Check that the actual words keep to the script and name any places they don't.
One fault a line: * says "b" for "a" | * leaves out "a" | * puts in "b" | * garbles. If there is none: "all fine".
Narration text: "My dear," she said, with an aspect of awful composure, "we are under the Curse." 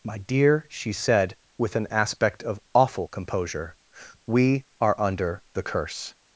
all fine